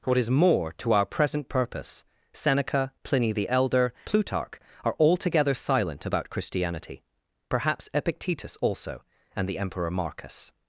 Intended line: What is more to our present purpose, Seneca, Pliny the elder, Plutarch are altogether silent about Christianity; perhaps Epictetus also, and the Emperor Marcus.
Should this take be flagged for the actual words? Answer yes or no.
no